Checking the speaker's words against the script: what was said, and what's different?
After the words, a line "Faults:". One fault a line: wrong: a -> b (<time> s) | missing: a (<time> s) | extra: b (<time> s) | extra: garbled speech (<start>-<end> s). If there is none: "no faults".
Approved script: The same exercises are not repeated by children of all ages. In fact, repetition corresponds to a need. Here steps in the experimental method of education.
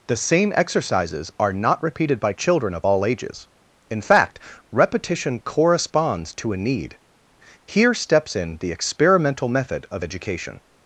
The same exercises are not repeated by children of all ages. In fact, repetition corresponds to a need. Here steps in the experimental method of education.
Faults:
no faults